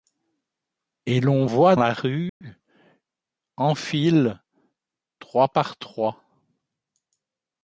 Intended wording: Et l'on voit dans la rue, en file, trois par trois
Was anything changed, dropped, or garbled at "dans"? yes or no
yes